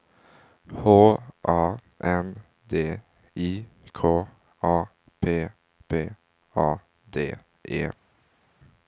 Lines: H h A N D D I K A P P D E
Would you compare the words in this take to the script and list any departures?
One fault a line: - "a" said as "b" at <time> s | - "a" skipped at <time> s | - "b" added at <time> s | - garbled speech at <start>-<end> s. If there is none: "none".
- "h" skipped at 1.2 s
- "D" skipped at 3.0 s
- "A" added at 6.5 s